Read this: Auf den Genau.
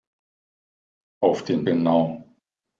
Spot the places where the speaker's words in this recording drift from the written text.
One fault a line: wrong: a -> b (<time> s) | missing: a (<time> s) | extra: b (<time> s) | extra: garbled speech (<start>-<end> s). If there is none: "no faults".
no faults